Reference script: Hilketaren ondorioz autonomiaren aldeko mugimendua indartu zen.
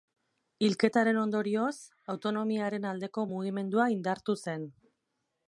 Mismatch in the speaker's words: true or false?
false